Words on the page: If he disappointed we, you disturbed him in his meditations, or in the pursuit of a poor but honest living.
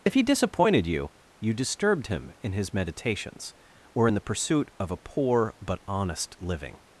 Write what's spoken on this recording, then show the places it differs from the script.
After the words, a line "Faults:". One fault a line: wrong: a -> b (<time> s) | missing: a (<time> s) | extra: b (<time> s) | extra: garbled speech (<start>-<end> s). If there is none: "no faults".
If he disappointed you, you disturbed him in his meditations, or in the pursuit of a poor but honest living.
Faults:
wrong: we -> you (0.9 s)